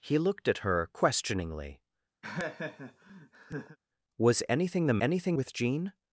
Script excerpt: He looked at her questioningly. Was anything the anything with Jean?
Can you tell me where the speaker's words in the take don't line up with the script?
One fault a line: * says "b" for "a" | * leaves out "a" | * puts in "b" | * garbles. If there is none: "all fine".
all fine